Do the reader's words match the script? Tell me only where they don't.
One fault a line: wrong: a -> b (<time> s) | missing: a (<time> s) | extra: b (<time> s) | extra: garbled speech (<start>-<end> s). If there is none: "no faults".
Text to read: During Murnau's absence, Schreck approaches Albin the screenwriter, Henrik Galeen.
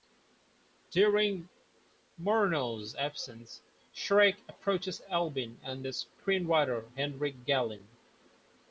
extra: and (5.6 s)